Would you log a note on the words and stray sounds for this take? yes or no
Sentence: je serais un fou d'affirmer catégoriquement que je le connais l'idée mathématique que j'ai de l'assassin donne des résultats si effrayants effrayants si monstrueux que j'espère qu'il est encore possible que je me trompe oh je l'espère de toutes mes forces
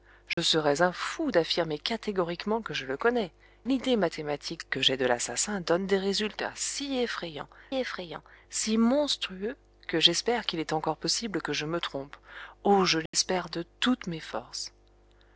yes